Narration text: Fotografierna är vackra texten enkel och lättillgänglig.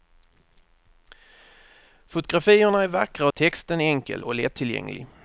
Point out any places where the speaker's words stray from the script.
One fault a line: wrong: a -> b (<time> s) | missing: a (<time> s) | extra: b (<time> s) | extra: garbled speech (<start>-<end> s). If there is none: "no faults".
no faults